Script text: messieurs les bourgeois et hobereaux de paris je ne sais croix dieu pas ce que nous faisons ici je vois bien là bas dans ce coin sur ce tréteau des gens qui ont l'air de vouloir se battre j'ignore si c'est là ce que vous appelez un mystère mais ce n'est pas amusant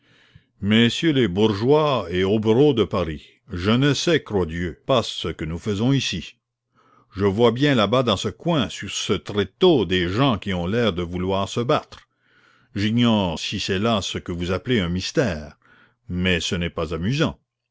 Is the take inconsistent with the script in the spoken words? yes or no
no